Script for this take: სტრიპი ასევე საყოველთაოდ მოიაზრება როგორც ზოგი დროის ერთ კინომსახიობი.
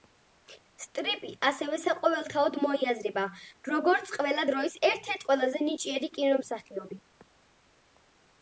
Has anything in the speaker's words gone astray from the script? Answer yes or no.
yes